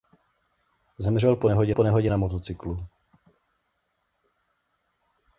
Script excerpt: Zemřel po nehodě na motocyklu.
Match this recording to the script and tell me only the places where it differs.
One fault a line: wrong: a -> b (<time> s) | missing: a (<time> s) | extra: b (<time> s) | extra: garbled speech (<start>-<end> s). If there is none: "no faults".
extra: po nehodě (1.7 s)